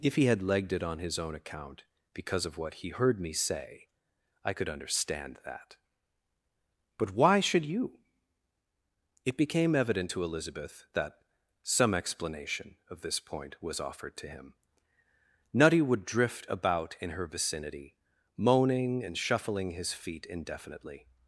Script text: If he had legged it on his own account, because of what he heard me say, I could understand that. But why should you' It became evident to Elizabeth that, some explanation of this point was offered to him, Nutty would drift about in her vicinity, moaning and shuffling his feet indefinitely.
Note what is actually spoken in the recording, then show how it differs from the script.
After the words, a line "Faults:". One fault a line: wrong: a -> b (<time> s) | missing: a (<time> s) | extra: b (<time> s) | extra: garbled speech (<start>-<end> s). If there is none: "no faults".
If he had legged it on his own account, because of what he heard me say, I could understand that. But why should you' It became evident to Elizabeth that, some explanation of this point was offered to him, Nutty would drift about in her vicinity, moaning and shuffling his feet indefinitely.
Faults:
no faults